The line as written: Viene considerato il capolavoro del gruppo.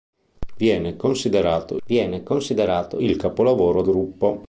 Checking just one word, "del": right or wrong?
wrong